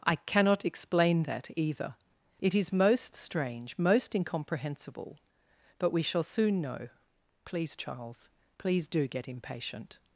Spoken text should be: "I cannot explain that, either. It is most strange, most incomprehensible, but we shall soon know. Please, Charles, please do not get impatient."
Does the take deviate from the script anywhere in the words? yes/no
yes